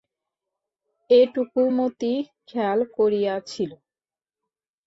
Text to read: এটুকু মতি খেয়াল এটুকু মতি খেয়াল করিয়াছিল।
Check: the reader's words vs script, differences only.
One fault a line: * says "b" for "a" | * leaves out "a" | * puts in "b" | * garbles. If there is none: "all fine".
* leaves out "এটুকু মতি খেয়াল"